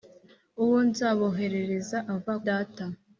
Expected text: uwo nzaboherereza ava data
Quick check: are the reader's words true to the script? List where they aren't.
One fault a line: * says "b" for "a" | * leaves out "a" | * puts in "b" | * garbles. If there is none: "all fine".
all fine